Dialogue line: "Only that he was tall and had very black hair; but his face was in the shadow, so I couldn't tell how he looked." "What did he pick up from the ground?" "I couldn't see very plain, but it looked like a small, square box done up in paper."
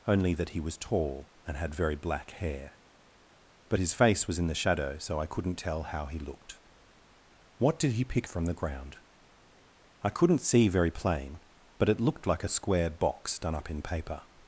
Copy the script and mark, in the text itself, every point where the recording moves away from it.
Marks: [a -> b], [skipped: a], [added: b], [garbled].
"Only that he was tall and had very black hair; but his face was in the shadow, so I couldn't tell how he looked." "What did he pick [skipped: up] from the ground?" "I couldn't see very plain, but it looked like a [skipped: small,] square box done up in paper."